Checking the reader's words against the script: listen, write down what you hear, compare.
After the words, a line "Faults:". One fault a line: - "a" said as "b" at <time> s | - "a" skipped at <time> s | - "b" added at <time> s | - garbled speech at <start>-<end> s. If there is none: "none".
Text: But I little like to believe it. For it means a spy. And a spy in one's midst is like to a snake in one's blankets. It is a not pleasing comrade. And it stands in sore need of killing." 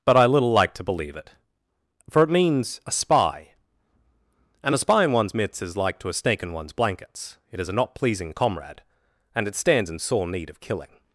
But I little like to believe it. For it means a spy. And a spy in one's midst is like to a snake in one's blankets. It is a not pleasing comrade. And it stands in sore need of killing."
Faults:
none